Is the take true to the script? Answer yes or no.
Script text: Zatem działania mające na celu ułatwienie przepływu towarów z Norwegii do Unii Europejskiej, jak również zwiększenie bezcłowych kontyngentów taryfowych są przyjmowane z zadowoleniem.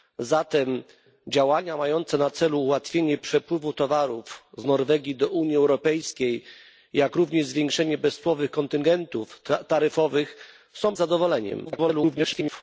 no